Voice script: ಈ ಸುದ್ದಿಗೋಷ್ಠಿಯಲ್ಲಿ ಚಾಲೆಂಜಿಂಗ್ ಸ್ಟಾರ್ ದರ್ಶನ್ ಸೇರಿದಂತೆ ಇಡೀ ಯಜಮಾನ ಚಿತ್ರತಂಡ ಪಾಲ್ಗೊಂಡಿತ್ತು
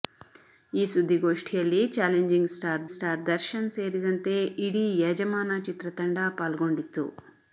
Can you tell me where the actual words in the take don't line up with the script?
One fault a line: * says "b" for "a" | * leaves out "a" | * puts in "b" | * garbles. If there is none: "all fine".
* puts in "ಸ್ಟಾರ್"